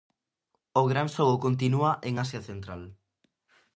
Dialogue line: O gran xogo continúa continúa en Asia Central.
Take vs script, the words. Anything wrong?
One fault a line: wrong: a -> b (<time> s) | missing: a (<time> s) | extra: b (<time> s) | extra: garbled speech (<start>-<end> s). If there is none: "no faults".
missing: continúa (1.9 s)